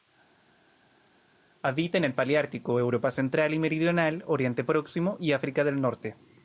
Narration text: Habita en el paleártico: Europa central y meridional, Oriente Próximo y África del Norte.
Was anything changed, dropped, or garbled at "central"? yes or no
no